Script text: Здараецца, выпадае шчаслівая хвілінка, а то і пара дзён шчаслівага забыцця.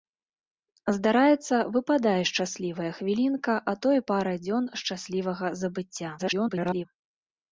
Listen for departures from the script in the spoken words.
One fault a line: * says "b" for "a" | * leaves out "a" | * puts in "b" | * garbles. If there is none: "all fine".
* garbles